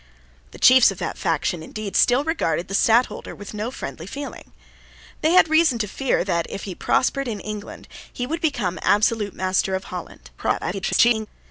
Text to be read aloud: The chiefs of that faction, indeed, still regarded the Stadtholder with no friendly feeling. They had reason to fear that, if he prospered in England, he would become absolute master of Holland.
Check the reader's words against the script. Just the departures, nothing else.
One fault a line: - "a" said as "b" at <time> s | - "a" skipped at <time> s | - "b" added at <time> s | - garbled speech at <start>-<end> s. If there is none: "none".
- garbled speech at 10.4-11.3 s